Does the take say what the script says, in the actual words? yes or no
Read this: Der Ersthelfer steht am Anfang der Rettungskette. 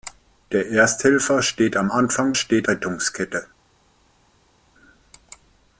no